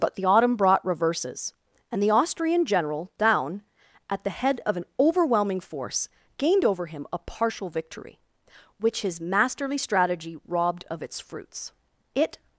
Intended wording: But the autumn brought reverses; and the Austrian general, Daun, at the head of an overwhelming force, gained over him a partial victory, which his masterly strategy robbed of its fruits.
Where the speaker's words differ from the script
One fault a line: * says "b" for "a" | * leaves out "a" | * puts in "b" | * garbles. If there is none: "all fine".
* puts in "It"